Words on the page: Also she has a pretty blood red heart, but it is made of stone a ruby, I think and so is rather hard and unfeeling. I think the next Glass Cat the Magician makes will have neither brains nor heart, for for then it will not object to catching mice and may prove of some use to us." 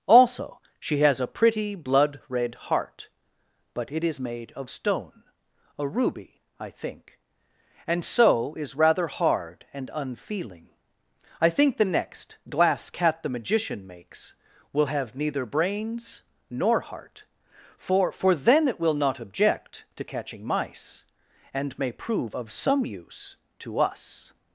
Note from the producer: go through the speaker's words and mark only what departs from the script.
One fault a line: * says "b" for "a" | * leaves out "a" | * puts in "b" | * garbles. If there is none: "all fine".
all fine